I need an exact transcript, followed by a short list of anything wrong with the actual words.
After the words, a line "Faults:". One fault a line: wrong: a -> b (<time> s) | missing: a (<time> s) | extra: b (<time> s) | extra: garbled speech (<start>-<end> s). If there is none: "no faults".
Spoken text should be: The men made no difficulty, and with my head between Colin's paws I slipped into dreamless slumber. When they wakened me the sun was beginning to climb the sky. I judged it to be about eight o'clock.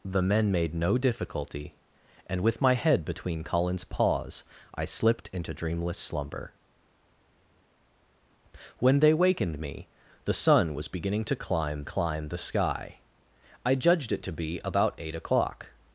The men made no difficulty, and with my head between Colin's paws I slipped into dreamless slumber. When they wakened me the sun was beginning to climb climb the sky. I judged it to be about eight o'clock.
Faults:
extra: climb (11.8 s)